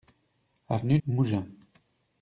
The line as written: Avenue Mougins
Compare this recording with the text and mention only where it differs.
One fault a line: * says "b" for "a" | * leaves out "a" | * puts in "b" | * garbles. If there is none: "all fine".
all fine